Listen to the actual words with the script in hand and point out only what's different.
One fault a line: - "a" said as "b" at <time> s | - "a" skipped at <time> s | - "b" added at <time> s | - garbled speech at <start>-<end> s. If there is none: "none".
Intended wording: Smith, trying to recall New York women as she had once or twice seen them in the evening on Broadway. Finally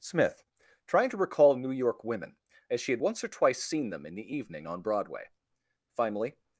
none